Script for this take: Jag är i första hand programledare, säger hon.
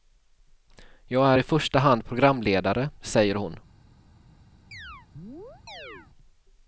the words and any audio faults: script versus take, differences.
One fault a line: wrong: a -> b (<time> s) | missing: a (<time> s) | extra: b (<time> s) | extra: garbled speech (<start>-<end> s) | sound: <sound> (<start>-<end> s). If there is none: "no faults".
sound: chirp (4.7-6.1 s)